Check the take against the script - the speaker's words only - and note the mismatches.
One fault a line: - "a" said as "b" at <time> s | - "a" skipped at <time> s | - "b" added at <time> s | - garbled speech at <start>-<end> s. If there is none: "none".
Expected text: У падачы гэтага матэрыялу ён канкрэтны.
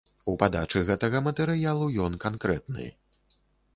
none